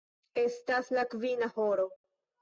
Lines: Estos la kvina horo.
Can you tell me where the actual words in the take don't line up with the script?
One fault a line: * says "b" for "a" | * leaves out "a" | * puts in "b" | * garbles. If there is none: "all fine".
* says "Estas" for "Estos"